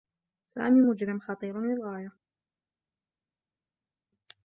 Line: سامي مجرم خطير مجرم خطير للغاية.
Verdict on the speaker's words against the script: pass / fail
fail